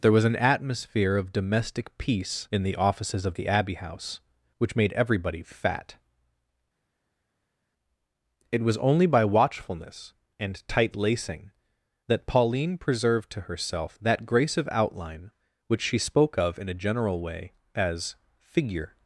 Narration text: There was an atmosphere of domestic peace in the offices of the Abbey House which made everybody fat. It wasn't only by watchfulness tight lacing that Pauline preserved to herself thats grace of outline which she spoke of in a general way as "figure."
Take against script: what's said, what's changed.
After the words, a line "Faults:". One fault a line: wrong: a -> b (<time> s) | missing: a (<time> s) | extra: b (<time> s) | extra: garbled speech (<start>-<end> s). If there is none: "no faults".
There was an atmosphere of domestic peace in the offices of the Abbey House which made everybody fat. It was only by watchfulness and tight lacing that Pauline preserved to herself that grace of outline which she spoke of in a general way as "figure."
Faults:
wrong: wasn't -> was (8.6 s)
extra: and (10.4 s)
wrong: thats -> that (14.0 s)